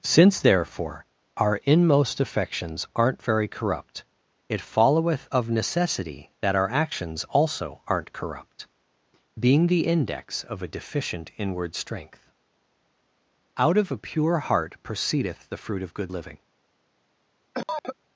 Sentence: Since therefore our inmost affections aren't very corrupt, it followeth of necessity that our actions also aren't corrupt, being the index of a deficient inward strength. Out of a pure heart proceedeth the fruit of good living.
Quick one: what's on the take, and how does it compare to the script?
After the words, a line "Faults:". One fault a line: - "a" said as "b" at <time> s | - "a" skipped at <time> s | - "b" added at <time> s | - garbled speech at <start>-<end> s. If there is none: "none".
Since therefore our inmost affections aren't very corrupt, it followeth of necessity that our actions also aren't corrupt, being the index of a deficient inward strength. Out of a pure heart proceedeth the fruit of good living.
Faults:
none